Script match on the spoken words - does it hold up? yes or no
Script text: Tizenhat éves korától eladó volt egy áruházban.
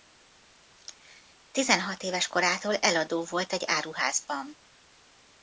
yes